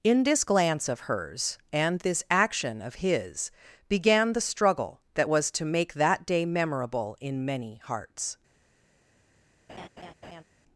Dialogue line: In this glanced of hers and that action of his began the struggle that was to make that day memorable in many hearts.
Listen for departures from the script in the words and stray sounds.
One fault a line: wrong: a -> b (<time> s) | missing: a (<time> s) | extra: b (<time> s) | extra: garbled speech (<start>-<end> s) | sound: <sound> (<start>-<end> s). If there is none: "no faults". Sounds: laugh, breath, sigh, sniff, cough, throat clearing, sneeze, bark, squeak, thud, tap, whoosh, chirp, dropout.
wrong: glanced -> glance (0.4 s)
wrong: that -> this (2.0 s)
sound: laugh (9.7-10.4 s)